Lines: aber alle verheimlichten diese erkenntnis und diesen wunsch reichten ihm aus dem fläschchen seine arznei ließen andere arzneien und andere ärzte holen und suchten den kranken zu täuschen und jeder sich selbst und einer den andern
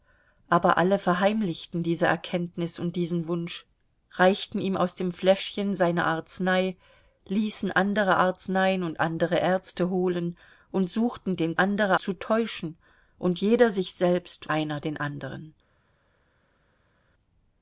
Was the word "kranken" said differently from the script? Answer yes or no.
yes